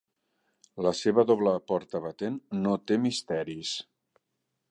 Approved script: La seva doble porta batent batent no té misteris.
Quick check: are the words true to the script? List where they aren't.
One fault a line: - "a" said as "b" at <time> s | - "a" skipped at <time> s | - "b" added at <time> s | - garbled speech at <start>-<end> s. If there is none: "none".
- "batent" skipped at 2.4 s